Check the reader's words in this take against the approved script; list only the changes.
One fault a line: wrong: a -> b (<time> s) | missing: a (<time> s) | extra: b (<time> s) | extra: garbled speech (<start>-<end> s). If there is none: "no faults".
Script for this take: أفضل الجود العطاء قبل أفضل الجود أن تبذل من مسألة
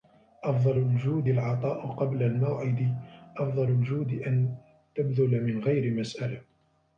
extra: الموعد (2.2 s)
extra: غير (5.6 s)